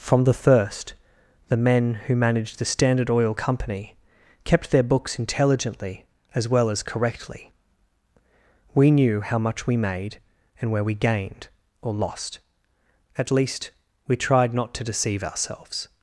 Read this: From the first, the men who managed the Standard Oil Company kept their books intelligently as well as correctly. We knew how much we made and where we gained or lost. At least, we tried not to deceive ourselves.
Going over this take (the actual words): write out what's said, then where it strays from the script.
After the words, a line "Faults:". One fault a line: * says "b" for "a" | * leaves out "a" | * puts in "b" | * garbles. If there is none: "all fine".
From the first, the men who managed the Standard Oil Company kept their books intelligently as well as correctly. We knew how much we made and where we gained or lost. At least, we tried not to deceive ourselves.
Faults:
all fine